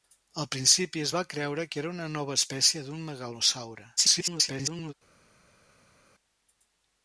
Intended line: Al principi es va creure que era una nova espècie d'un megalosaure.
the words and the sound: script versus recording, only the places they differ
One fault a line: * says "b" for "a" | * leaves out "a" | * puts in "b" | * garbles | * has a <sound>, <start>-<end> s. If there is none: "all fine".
* garbles